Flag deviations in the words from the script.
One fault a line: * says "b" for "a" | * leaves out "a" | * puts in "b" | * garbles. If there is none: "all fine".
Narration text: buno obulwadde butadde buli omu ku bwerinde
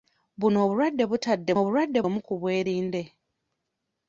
* says "obulwadde" for "buli"